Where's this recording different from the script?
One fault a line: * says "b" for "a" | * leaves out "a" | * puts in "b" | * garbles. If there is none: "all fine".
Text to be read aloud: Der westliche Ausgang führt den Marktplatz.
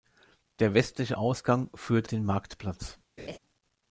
all fine